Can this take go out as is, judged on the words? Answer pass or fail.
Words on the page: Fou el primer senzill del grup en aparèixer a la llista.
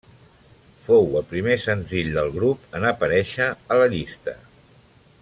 pass